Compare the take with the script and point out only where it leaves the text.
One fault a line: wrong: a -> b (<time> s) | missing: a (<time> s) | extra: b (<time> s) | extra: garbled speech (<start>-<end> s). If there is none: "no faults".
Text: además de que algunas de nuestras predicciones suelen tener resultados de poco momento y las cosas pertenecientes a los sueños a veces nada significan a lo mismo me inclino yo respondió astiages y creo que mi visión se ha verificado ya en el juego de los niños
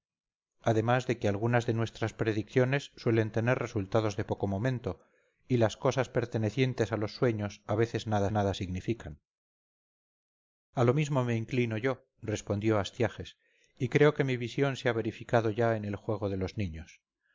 extra: nada (8.3 s)